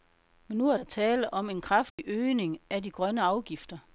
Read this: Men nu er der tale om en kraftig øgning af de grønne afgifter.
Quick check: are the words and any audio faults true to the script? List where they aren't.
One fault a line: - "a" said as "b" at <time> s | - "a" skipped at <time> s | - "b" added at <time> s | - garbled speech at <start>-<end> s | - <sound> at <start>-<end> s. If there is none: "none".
- dropout at 1.9-2.0 s